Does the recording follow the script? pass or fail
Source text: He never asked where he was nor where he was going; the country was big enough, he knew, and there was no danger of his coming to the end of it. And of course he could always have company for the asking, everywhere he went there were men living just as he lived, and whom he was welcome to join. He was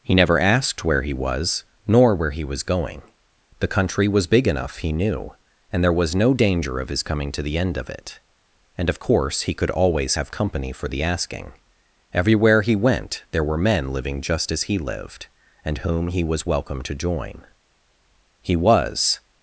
pass